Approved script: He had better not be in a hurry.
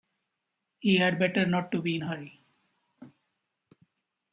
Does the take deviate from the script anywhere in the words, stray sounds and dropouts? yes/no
no